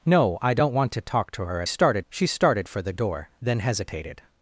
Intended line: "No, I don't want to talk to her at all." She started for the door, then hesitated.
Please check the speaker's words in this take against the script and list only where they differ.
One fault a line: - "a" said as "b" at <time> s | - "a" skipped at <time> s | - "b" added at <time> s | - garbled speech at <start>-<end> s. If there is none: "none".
- "all" said as "started" at 1.6 s